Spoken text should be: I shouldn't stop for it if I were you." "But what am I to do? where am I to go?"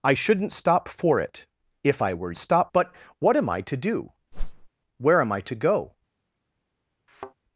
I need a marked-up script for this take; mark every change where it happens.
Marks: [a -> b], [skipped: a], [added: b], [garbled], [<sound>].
I shouldn't stop for it if I were [you." -> stop] "But what am I to do? [whoosh] where am I to go?" [thud]